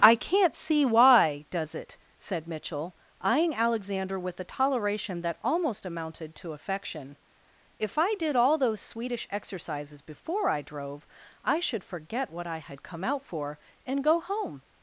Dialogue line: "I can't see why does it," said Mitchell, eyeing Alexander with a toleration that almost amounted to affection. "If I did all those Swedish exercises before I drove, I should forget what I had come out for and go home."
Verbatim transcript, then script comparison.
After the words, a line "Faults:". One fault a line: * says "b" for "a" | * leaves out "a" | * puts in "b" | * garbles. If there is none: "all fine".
"I can't see why does it," said Mitchell, eyeing Alexander with a toleration that almost amounted to affection. "If I did all those Swedish exercises before I drove, I should forget what I had come out for and go home."
Faults:
all fine